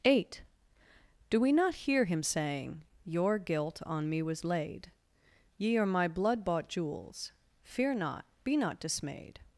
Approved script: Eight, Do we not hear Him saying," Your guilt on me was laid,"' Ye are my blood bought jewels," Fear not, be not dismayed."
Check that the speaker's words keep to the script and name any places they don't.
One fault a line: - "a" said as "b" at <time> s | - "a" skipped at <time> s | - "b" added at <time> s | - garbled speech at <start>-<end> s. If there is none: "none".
none